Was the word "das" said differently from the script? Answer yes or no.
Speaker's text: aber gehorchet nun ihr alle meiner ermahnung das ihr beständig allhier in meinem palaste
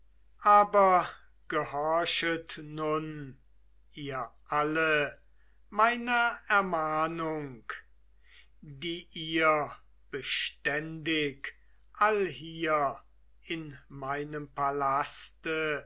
yes